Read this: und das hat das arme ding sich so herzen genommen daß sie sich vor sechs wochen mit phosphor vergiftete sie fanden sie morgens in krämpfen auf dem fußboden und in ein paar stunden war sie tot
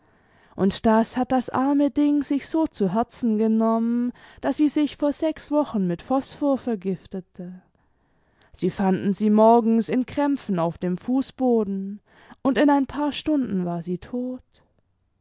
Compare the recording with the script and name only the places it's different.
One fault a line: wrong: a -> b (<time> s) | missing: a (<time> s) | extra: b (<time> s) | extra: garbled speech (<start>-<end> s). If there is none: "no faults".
extra: zu (2.6 s)